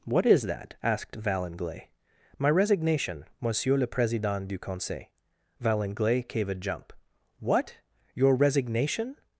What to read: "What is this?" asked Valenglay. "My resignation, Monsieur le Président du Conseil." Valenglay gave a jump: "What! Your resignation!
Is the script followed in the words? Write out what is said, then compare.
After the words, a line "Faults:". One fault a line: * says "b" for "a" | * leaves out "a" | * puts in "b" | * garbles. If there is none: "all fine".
"What is that?" asked Valenglay. "My resignation, Monsieur le Président du Conseil." Valenglay gave a jump: "What! Your resignation!
Faults:
* says "that" for "this"